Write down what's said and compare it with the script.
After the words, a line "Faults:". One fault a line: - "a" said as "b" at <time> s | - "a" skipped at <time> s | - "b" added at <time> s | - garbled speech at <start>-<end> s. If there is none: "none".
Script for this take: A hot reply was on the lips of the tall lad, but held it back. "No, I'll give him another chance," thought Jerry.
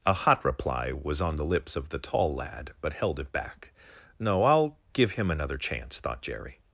A hot reply was on the lips of the tall lad, but held it back. "No, I'll give him another chance," thought Jerry.
Faults:
none